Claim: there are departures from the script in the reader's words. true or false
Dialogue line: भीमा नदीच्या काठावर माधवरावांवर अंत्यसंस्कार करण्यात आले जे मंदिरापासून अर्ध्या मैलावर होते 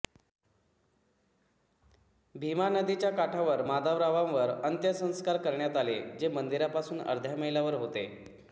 false